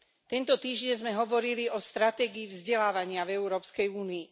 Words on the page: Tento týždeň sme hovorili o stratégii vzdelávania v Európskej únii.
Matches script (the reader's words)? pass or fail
pass